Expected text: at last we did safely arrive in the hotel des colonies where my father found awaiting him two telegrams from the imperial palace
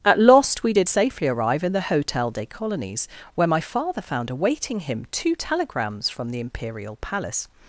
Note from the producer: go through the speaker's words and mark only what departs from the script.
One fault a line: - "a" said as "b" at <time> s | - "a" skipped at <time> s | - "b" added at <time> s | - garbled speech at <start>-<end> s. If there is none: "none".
- "last" said as "lost" at 0.2 s